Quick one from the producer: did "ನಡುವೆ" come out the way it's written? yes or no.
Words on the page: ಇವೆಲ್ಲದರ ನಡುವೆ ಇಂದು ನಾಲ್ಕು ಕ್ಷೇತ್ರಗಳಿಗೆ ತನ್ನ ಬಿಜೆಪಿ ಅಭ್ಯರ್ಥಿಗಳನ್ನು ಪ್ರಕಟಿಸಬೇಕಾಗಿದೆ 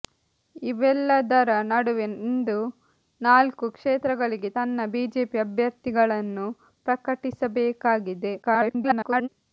yes